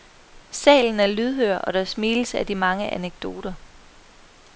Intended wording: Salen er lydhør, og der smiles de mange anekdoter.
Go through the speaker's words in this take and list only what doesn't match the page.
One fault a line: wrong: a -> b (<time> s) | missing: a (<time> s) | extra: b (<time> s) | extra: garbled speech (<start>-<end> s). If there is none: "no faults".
extra: af (2.4 s)